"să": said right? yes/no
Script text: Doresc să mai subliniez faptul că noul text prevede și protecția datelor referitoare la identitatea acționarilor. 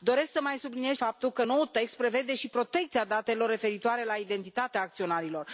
yes